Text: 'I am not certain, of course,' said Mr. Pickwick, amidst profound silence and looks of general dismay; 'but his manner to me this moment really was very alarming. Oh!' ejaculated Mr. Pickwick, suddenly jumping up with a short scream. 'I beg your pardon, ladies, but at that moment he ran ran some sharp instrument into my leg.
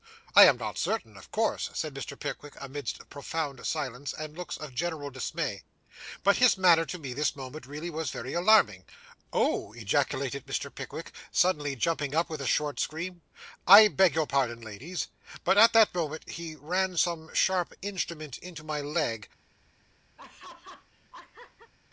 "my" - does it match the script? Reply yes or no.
yes